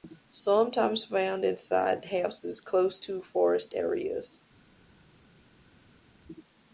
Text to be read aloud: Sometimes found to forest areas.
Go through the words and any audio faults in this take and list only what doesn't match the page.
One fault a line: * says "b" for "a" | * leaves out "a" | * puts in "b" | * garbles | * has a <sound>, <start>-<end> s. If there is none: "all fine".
* puts in "inside houses close"